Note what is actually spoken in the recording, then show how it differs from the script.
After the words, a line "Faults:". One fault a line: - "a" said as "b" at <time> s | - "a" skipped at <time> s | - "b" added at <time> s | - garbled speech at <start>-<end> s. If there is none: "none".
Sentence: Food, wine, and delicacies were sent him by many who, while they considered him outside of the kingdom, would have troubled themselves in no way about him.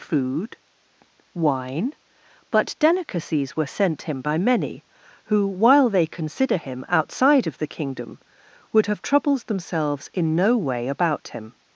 Food, wine, but delicacies were sent him by many who, while they consider him outside of the kingdom, would have troubled themselves in no way about him.
Faults:
- "and" said as "but" at 2.5 s
- "considered" said as "consider" at 6.0 s